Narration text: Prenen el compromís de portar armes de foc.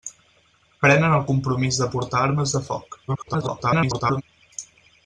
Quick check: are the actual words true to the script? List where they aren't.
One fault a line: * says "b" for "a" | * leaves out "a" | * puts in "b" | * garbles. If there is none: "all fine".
* garbles